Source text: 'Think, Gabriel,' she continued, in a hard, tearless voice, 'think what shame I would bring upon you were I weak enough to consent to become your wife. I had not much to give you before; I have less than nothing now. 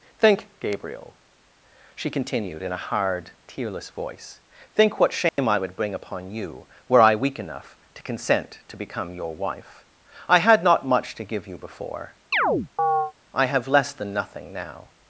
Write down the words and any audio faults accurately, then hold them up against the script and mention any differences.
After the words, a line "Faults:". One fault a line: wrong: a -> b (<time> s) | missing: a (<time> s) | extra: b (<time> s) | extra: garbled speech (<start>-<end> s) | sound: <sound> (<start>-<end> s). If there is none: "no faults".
'Think, Gabriel,' she continued, in a hard, tearless voice, 'think what shame I would bring upon you were I weak enough to consent to become your wife. I had not much to give you before; I have less than nothing now.
Faults:
sound: dropout (5.3-5.4 s)
sound: chirp (12.3-13.1 s)